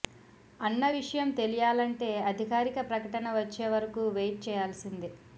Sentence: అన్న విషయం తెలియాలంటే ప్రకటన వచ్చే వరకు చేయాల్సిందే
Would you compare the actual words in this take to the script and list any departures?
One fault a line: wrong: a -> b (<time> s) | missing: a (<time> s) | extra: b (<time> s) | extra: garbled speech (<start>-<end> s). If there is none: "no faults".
extra: అధికారిక (2.3 s)
extra: వెయిట్ (4.2 s)